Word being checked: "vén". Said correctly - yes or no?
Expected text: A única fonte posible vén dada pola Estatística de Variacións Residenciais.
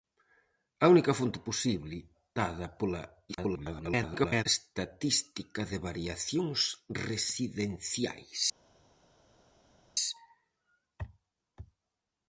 no